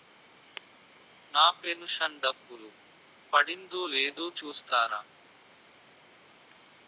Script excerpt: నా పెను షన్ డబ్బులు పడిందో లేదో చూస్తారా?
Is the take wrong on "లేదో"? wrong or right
right